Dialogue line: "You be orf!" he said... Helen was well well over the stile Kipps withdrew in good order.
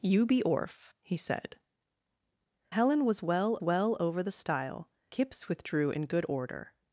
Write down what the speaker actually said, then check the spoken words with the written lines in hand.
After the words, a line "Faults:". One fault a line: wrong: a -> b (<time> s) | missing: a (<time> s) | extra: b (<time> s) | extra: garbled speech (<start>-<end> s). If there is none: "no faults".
"You be orf!" he said... Helen was well well over the stile Kipps withdrew in good order.
Faults:
no faults